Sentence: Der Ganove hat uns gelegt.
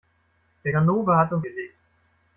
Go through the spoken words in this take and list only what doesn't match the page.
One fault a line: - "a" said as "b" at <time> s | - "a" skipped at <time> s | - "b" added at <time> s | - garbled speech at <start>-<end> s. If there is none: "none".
none